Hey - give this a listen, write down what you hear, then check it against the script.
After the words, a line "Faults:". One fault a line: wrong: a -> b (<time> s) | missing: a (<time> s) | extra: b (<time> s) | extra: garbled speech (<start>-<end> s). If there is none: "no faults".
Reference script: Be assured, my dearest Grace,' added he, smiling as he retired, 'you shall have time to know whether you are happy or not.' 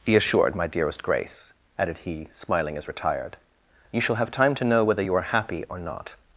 Be assured, my dearest Grace,' added he, smiling as retired, 'you shall have time to know whether you are happy or not.'
Faults:
missing: he (2.9 s)